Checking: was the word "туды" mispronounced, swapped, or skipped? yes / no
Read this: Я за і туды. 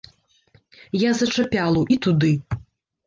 no